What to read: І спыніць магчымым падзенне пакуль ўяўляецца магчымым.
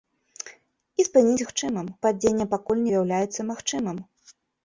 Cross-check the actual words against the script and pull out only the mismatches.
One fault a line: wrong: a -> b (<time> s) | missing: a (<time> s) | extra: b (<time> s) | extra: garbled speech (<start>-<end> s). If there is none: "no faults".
no faults